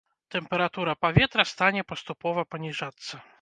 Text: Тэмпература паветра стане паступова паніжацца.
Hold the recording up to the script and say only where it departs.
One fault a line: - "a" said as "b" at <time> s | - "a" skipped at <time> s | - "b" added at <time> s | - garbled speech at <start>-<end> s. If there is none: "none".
none